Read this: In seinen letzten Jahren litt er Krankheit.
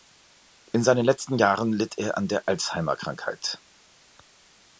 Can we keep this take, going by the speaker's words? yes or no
no